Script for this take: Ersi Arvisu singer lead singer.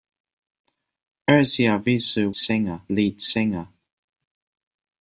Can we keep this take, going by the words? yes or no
yes